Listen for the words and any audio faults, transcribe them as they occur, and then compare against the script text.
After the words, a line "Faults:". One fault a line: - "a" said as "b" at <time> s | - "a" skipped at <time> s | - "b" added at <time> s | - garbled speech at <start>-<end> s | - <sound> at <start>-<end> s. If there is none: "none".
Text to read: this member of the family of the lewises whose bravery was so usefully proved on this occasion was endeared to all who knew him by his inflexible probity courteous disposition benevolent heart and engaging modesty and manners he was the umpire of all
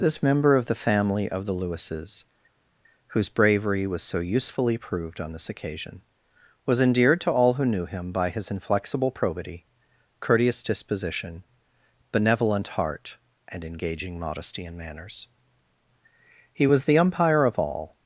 this member of the family of the lewises whose bravery was so usefully proved on this occasion was endeared to all who knew him by his inflexible probity courteous disposition benevolent heart and engaging modesty and manners he was the umpire of all
Faults:
none